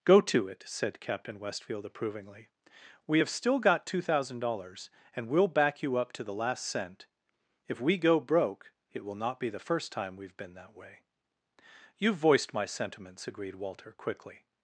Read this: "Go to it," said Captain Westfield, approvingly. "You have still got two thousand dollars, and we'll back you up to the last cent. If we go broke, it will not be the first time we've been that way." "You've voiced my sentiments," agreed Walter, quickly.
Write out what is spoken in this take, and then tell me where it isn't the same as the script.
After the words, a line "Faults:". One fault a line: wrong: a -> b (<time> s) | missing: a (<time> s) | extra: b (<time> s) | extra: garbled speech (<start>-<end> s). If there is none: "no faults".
"Go to it," said Captain Westfield, approvingly. "We have still got two thousand dollars, and we'll back you up to the last cent. If we go broke, it will not be the first time we've been that way." "You've voiced my sentiments," agreed Walter, quickly.
Faults:
wrong: You -> We (3.0 s)